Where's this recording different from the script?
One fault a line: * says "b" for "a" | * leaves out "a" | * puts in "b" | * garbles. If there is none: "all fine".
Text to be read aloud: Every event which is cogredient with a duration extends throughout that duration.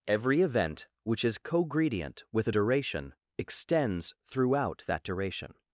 all fine